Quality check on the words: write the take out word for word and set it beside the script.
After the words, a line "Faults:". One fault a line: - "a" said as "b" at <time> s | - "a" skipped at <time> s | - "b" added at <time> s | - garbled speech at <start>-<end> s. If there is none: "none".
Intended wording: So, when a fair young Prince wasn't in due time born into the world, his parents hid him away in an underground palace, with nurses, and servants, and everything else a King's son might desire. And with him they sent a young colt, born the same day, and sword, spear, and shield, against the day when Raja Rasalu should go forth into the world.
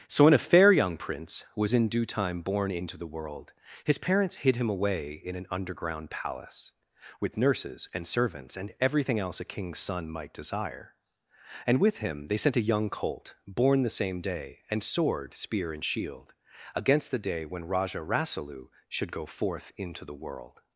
So, when a fair young Prince was in due time born into the world, his parents hid him away in an underground palace, with nurses, and servants, and everything else a King's son might desire. And with him they sent a young colt, born the same day, and sword, spear, and shield, against the day when Raja Rasalu should go forth into the world.
Faults:
- "wasn't" said as "was" at 1.5 s